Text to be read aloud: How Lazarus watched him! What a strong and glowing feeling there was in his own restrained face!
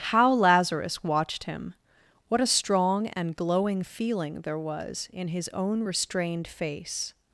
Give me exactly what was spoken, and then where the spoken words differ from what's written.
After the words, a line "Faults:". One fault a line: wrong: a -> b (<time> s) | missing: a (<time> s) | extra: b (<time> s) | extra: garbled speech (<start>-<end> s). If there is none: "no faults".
How Lazarus watched him! What a strong and glowing feeling there was in his own restrained face!
Faults:
no faults